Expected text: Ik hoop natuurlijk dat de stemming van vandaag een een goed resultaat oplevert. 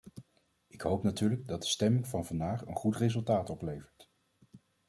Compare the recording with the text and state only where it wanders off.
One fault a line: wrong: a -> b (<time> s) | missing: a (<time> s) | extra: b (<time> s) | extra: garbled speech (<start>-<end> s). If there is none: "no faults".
missing: een (2.8 s)